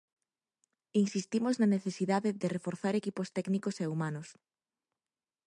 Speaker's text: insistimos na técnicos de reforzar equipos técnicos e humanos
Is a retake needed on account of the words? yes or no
yes